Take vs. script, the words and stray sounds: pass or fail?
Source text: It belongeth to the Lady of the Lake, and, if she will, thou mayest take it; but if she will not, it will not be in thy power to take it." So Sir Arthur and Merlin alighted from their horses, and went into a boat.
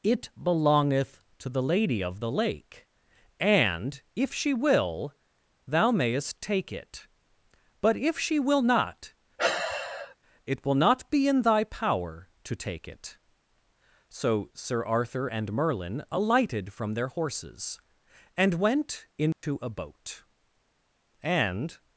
fail